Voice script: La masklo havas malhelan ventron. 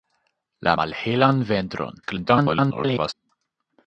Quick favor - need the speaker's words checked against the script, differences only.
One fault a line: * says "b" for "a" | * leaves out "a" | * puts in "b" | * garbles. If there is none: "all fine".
* leaves out "masklo havas"
* garbles